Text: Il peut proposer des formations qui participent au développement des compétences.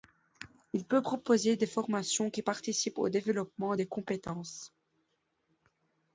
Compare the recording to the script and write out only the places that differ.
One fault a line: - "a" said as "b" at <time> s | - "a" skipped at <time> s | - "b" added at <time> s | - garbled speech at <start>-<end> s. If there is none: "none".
none